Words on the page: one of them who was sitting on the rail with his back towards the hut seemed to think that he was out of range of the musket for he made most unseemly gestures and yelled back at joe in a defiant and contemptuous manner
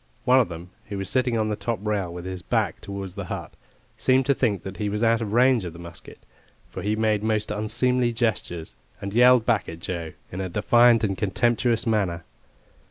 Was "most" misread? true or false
false